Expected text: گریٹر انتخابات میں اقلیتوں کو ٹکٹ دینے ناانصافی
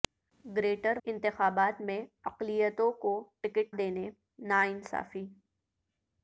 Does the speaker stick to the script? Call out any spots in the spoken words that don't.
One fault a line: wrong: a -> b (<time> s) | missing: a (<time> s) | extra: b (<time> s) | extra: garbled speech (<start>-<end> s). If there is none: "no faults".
no faults